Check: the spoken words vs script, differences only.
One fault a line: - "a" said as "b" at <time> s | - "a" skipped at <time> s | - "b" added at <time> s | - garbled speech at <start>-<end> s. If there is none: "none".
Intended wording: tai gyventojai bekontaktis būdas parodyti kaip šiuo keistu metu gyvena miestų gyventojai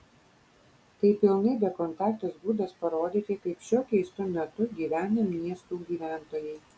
- "gyventojai" said as "pilnai" at 1.2 s